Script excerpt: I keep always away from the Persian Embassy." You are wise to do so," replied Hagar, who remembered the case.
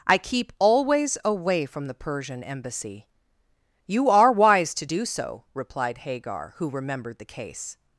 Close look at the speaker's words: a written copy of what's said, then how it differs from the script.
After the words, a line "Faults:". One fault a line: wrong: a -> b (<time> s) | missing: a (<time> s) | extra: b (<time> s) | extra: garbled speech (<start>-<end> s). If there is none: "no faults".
I keep always away from the Persian Embassy." You are wise to do so," replied Hagar, who remembered the case.
Faults:
no faults